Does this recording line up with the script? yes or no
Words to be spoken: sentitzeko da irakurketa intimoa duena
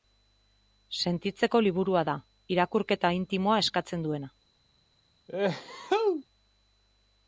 no